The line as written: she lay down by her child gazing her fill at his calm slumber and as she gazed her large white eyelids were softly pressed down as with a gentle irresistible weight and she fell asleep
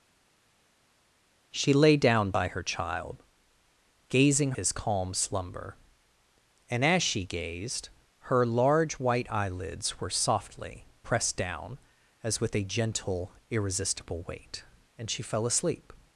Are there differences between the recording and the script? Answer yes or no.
yes